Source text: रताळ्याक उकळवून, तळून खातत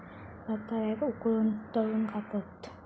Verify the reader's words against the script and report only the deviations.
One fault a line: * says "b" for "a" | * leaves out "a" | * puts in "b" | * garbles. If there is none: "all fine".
all fine